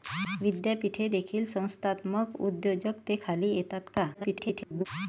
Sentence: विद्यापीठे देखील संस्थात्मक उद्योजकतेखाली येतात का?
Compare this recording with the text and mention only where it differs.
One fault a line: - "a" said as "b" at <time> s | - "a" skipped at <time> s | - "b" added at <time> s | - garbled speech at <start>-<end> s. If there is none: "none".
- garbled speech at 4.1-4.9 s